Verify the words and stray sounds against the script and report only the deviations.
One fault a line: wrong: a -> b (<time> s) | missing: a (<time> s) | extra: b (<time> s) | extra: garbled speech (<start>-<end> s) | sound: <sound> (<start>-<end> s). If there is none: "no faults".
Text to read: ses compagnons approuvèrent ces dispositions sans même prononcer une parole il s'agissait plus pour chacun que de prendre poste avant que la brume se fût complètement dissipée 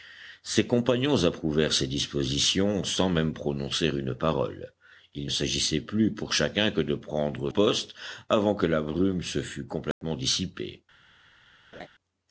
sound: dropout (9.9-10.0 s)
sound: laugh (11.7-11.9 s)